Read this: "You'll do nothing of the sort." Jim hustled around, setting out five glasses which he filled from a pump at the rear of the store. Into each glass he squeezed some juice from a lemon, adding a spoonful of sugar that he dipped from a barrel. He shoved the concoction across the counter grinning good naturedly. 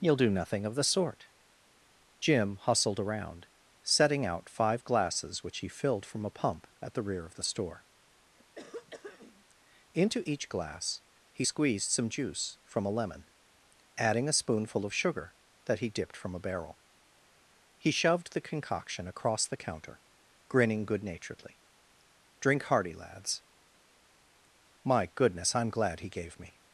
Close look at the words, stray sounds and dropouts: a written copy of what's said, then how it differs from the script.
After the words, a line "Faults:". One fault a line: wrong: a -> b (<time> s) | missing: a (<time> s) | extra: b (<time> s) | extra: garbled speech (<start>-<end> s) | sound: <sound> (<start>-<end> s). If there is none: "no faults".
"You'll do nothing of the sort." Jim hustled around, setting out five glasses which he filled from a pump at the rear of the store. Into each glass he squeezed some juice from a lemon, adding a spoonful of sugar that he dipped from a barrel. He shoved the concoction across the counter grinning good naturedly. "Drink hearty, lads." "My goodness, I'm glad he gave me
Faults:
sound: throat clearing (8.4-9.5 s)
extra: Drink hearty lads My goodness I'm glad he gave me (22.4 s)